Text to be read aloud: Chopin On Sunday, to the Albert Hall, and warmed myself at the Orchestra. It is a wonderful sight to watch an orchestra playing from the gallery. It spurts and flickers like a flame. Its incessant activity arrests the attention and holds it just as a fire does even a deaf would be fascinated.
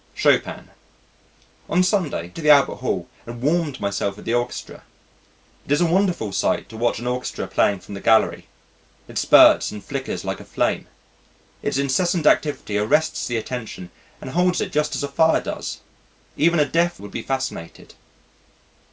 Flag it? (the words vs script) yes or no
no